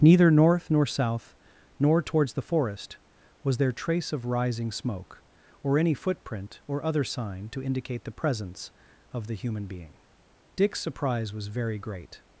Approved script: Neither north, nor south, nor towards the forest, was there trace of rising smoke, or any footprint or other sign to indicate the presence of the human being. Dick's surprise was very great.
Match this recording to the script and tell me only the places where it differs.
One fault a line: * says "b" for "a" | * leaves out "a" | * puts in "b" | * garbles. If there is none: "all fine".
all fine